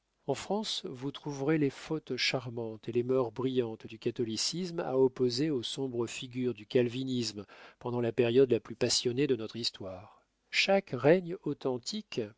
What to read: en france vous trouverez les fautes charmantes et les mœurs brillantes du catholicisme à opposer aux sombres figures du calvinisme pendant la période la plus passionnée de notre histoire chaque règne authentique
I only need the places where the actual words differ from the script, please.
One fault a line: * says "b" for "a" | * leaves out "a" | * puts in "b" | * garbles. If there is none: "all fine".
all fine